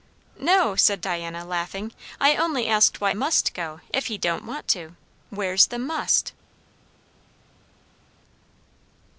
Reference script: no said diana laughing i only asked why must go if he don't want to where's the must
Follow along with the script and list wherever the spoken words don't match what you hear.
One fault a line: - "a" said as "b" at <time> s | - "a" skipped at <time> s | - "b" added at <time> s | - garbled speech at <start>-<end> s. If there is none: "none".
none